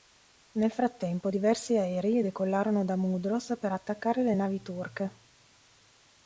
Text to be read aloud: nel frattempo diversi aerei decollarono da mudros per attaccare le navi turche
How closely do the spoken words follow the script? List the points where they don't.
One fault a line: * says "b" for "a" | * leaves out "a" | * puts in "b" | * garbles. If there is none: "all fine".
all fine